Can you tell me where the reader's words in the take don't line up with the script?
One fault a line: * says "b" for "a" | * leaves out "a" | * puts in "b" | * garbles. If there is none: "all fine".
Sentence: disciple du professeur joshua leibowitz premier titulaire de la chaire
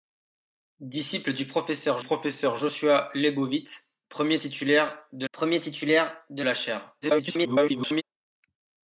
* puts in "professeur"
* puts in "premier titulaire de"
* garbles